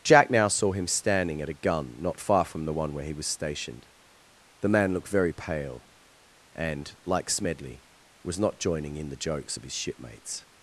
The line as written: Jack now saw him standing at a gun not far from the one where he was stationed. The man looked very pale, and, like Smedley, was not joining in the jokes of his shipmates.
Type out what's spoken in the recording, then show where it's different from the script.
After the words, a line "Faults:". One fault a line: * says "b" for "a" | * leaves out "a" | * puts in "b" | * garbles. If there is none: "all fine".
Jack now saw him standing at a gun not far from the one where he was stationed. The man looked very pale, and, like Smedley, was not joining in the jokes of his shipmates.
Faults:
all fine